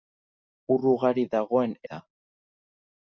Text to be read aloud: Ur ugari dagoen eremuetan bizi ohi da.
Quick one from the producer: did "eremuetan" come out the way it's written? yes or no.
no